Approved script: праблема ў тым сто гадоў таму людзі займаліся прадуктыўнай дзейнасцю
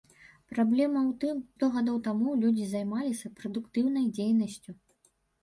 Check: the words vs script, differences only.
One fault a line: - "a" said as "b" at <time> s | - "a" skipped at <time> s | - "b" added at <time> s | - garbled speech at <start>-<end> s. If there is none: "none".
none